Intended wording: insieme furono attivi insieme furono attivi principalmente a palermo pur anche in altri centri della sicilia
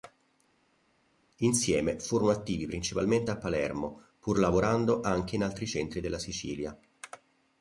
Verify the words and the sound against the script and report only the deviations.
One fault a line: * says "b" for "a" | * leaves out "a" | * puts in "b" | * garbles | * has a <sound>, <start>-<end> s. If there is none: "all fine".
* leaves out "insieme furono attivi"
* puts in "lavorando"